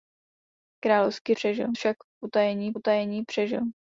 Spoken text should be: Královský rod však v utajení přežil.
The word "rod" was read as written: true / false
false